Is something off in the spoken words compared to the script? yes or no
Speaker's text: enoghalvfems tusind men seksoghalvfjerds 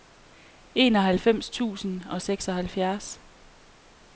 yes